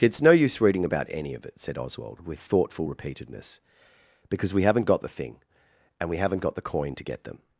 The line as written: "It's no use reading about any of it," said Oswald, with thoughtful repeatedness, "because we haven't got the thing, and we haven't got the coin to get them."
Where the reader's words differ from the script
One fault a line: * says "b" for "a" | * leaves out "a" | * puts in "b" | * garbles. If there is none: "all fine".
all fine